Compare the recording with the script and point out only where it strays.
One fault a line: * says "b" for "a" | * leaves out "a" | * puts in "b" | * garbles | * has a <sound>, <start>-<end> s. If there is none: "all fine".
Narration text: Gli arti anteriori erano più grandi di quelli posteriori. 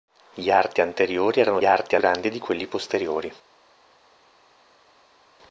* says "arti" for "più"